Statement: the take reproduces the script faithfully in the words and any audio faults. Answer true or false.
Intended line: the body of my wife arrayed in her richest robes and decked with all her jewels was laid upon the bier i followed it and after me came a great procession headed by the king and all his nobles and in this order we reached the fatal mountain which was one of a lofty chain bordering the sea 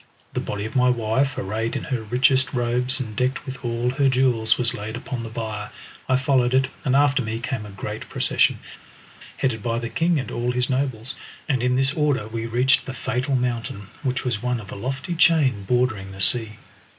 true